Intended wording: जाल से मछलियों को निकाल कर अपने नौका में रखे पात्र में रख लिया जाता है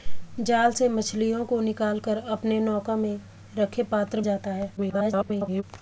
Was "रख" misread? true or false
true